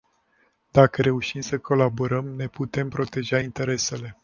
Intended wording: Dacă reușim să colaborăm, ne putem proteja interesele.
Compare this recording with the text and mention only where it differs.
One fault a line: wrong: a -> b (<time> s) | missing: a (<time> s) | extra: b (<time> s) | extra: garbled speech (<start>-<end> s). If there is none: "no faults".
no faults